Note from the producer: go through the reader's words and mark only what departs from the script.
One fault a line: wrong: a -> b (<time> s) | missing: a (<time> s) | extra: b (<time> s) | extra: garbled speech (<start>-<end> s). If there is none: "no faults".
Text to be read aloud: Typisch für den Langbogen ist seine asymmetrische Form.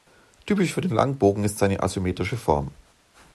no faults